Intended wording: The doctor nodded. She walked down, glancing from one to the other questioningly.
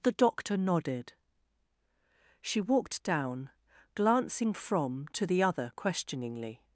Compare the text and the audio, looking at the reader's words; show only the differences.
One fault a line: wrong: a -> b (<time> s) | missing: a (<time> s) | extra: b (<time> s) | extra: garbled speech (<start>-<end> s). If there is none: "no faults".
missing: one (5.1 s)